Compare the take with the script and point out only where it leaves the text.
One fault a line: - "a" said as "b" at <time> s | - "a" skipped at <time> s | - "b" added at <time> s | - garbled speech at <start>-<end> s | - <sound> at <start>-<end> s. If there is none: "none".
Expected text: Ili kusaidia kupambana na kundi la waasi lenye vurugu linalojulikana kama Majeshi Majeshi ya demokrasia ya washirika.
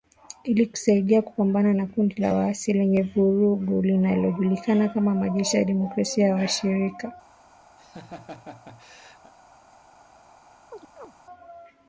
- "Majeshi" skipped at 5.6 s
- laugh at 7.8-9.3 s
- chirp at 10.7-11.1 s